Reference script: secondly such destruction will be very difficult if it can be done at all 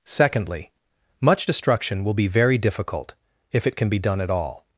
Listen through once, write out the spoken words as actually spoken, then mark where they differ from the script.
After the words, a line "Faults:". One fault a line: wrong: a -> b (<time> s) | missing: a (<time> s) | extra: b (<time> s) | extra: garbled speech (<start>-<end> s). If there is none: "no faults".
secondly much destruction will be very difficult if it can be done at all
Faults:
wrong: such -> much (1.2 s)